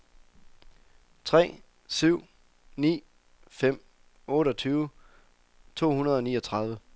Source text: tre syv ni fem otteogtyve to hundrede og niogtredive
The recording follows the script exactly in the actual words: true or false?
true